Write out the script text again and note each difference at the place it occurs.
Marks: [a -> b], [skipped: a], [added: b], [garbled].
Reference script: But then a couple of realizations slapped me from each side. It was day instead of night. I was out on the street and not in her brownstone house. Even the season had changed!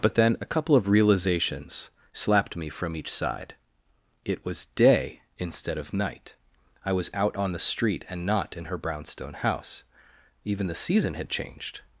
But then a couple of realizations slapped me from each side. It was day instead of night. I was out on the street and not in her brownstone house. Even the season had changed!